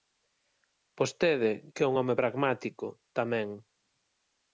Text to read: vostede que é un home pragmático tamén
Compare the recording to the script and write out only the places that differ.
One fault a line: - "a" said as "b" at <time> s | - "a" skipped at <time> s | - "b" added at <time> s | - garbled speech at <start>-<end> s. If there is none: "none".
none